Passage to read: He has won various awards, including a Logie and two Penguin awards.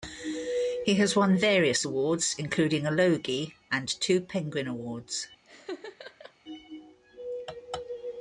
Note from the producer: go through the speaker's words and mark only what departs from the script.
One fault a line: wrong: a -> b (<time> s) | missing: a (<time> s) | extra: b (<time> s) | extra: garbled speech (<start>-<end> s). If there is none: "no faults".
no faults